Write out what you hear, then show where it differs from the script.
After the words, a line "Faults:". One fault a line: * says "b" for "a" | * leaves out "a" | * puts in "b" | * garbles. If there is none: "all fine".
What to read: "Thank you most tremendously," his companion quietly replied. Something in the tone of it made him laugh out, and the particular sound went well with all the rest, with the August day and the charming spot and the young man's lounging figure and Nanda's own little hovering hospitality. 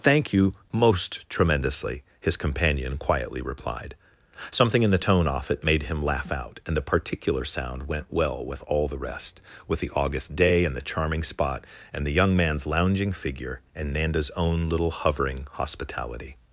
"Thank you most tremendously," his companion quietly replied. Something in the tone off it made him laugh out, and the particular sound went well with all the rest, with the August day and the charming spot and the young man's lounging figure and Nanda's own little hovering hospitality.
Faults:
* says "off" for "of"